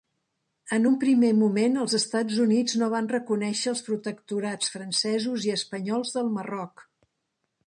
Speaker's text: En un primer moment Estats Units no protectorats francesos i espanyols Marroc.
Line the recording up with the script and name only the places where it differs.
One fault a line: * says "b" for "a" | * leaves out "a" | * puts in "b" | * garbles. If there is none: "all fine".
* puts in "els"
* puts in "van reconèixer els"
* puts in "del"